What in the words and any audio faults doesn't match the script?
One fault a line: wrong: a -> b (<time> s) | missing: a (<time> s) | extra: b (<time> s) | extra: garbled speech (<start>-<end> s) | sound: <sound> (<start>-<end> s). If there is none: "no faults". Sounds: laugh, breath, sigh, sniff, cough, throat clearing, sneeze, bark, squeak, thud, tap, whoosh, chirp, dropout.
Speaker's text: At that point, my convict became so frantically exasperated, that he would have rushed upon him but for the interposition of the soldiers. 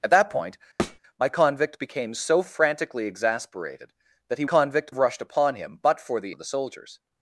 sound: thud (0.8-1.0 s)
wrong: would -> convict (4.4 s)
missing: interposition (6.3 s)